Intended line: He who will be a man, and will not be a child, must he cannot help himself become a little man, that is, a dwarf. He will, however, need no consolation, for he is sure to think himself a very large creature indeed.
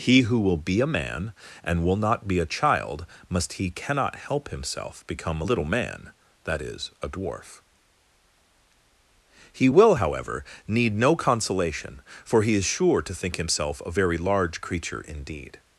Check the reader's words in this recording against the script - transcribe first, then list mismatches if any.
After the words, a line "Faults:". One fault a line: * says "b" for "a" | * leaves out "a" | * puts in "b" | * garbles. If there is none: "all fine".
He who will be a man, and will not be a child, must he cannot help himself become a little man, that is, a dwarf. He will, however, need no consolation, for he is sure to think himself a very large creature indeed.
Faults:
all fine